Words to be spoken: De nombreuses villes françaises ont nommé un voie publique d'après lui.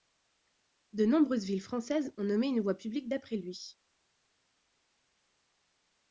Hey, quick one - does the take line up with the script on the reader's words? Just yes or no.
no